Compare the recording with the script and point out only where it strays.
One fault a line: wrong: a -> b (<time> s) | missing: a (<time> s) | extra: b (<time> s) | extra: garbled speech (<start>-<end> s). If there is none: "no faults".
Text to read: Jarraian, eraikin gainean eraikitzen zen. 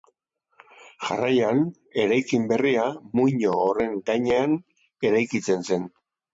extra: berria muino horren (2.5 s)